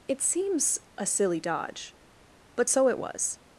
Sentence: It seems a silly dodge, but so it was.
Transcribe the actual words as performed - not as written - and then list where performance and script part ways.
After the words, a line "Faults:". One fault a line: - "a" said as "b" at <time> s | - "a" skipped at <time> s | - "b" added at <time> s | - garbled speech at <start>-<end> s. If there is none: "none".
It seems a silly dodge, but so it was.
Faults:
none